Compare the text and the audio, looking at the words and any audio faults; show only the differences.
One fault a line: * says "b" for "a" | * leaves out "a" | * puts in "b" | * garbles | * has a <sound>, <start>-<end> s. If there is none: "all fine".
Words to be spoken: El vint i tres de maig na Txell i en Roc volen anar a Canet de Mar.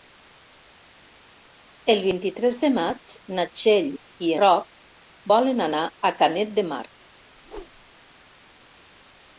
* leaves out "en"
* has a whoosh, 7.4-7.9 s